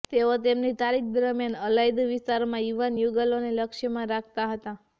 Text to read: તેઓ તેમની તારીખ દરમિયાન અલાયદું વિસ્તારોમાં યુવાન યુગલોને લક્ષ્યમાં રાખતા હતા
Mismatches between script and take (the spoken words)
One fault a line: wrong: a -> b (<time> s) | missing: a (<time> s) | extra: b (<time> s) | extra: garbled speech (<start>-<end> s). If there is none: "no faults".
no faults